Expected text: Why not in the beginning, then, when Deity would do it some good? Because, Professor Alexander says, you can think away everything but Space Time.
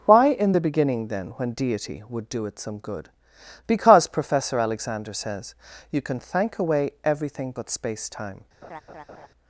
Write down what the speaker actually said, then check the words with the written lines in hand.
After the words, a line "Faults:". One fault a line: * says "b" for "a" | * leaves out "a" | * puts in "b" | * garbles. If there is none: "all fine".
Why in the beginning, then, when Deity would do it some good? Because, Professor Alexander says, you can thank away everything but Space Time.
Faults:
* leaves out "not"
* says "thank" for "think"